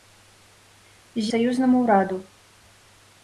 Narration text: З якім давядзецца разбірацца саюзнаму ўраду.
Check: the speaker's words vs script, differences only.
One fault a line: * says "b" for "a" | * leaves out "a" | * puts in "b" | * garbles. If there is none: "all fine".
* leaves out "якім давядзецца разбірацца"